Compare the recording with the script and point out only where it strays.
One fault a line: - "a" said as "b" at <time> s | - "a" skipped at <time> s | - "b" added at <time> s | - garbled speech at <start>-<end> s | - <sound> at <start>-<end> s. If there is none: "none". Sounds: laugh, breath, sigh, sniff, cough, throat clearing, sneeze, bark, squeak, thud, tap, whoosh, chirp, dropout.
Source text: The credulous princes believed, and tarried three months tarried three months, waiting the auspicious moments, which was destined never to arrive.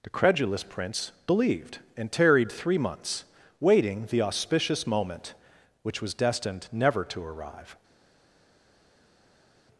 - "princes" said as "prince" at 0.6 s
- "tarried three months" skipped at 3.2 s
- "moments" said as "moment" at 4.8 s